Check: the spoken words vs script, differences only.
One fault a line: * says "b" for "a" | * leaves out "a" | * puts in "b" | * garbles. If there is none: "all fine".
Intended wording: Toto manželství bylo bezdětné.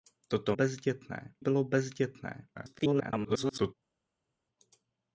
* says "bezdětné" for "manželství"
* garbles